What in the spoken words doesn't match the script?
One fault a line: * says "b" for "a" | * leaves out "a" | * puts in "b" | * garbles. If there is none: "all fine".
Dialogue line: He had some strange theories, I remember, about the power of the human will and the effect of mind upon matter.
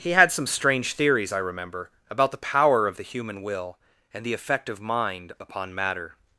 all fine